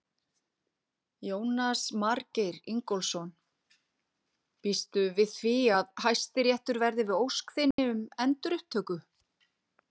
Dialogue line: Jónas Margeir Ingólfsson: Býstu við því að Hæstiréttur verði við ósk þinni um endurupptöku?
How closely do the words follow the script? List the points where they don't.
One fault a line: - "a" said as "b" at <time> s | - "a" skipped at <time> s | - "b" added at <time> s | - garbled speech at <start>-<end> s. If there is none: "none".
none